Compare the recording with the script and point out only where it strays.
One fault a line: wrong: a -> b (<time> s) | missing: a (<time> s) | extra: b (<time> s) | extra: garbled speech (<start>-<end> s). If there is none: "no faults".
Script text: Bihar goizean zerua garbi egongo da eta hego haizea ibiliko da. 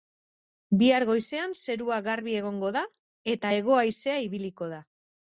no faults